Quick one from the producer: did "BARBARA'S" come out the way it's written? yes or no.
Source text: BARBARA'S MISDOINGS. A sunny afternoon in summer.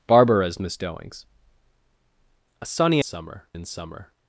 yes